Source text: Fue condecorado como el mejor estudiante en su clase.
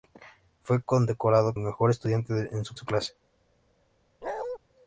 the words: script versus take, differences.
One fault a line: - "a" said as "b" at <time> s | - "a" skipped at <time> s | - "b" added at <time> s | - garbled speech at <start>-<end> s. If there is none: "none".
- "como" skipped at 1.5 s
- "su" added at 2.8 s